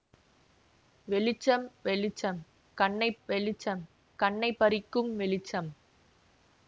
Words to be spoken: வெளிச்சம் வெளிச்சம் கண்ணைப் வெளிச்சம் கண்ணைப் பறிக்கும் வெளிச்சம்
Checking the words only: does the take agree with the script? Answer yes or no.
yes